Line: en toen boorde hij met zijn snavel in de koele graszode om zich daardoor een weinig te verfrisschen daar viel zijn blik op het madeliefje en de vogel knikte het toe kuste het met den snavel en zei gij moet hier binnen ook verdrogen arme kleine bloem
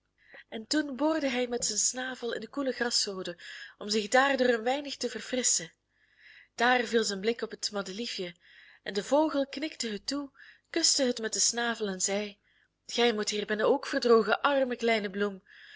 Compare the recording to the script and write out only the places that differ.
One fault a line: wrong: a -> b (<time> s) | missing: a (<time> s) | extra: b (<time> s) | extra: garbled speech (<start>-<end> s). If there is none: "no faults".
no faults